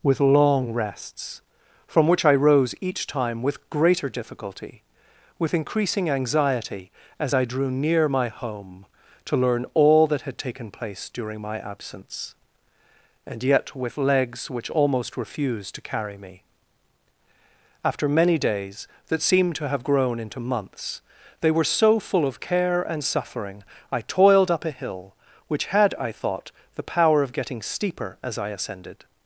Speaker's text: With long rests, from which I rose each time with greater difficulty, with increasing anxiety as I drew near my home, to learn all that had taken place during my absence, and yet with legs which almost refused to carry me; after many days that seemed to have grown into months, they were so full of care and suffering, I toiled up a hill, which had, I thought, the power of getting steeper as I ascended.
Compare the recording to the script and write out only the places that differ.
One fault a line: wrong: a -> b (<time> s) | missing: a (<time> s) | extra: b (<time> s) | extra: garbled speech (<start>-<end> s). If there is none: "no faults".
no faults